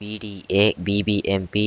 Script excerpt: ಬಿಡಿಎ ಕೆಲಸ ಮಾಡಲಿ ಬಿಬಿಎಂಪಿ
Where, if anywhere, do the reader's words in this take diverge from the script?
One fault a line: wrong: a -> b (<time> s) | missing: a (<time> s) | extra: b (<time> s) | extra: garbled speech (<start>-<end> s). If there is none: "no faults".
missing: ಕೆಲಸ ಮಾಡಲಿ (0.7 s)